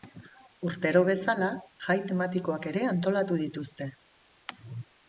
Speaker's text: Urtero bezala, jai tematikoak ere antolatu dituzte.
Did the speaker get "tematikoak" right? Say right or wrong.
right